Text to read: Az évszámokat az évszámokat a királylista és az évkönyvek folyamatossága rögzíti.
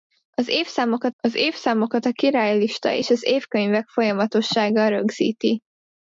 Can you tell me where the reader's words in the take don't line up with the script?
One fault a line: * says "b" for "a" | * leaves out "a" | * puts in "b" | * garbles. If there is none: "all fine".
all fine